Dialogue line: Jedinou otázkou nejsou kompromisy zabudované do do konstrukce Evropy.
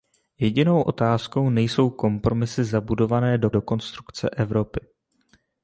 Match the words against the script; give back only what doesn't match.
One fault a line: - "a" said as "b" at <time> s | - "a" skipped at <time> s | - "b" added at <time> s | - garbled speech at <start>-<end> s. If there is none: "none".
none